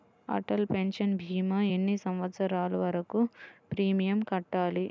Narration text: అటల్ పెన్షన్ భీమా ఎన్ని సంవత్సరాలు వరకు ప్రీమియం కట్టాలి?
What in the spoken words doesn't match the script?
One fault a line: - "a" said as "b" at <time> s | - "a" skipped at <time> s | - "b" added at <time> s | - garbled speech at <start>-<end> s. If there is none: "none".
none